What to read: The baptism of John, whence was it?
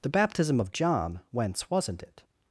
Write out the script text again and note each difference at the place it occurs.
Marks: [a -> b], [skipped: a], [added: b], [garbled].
The baptism of John, whence [was -> wasn't] it?